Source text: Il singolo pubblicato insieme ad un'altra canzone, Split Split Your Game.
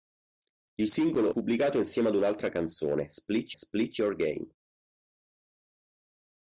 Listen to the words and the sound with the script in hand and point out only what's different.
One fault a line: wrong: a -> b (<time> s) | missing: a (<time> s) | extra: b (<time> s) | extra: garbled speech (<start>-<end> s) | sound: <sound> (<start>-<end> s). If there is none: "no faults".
no faults